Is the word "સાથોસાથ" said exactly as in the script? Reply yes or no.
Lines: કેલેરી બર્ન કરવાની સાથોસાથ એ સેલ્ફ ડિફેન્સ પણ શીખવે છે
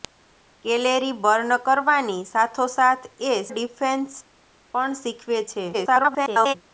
yes